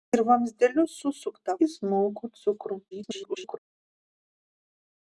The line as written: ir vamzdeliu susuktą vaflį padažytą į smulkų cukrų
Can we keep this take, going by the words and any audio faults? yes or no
no